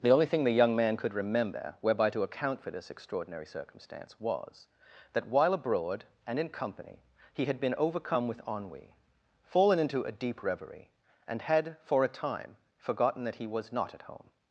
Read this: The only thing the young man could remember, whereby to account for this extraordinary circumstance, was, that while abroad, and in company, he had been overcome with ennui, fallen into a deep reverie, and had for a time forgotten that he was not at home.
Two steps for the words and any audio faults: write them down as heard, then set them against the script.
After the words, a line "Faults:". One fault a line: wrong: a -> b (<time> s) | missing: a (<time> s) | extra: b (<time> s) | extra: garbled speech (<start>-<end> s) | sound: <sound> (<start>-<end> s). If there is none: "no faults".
The only thing the young man could remember, whereby to account for this extraordinary circumstance, was, that while abroad, and in company, he had been overcome with ennui, fallen into a deep reverie, and had for a time forgotten that he was not at home.
Faults:
no faults